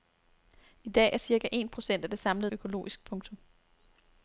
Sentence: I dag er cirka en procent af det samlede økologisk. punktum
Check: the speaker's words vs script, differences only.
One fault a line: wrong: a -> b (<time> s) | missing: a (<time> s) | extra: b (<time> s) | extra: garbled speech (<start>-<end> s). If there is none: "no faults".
no faults